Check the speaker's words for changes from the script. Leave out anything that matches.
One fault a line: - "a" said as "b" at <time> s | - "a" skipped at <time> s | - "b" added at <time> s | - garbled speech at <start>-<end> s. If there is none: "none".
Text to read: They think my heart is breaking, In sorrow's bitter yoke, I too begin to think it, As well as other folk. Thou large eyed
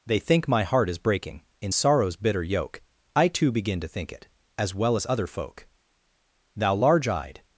none